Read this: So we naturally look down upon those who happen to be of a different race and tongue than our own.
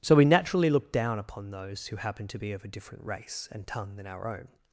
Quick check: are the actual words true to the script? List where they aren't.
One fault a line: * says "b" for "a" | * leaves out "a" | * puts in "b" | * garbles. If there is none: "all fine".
all fine